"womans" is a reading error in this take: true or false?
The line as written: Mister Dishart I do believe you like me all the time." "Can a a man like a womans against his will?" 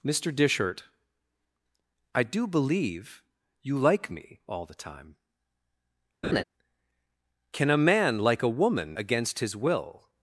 true